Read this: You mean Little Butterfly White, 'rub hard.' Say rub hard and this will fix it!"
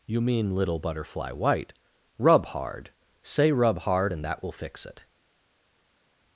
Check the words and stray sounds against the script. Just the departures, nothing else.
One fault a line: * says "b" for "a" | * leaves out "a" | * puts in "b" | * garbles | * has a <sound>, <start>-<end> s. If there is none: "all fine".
* says "that" for "this"